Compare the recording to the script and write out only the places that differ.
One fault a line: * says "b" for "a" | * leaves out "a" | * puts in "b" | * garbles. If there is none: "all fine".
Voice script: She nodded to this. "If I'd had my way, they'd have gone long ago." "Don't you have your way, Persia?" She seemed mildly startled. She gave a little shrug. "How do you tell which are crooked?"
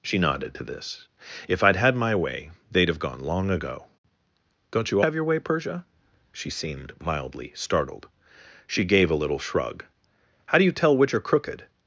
all fine